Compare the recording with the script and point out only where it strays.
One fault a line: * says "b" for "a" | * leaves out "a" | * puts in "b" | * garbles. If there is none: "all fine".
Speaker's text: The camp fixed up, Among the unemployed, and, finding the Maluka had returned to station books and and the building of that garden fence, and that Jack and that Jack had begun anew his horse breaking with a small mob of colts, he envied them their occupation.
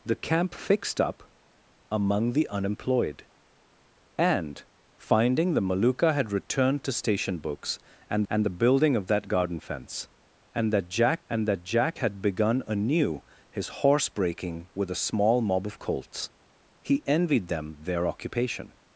all fine